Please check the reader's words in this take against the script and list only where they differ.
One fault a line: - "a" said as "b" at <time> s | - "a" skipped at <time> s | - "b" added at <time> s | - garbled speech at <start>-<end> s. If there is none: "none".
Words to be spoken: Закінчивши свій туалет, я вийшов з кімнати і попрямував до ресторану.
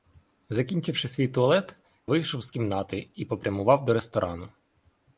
- "я" skipped at 1.8 s